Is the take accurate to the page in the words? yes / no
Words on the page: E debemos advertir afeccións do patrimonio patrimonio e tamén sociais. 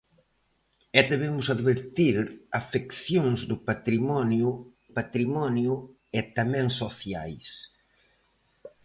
yes